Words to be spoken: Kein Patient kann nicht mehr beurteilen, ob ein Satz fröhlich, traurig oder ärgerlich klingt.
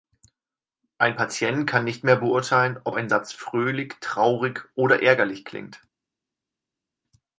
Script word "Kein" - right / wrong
wrong